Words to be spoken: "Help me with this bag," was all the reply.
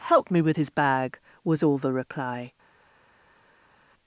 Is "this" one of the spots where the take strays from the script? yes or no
yes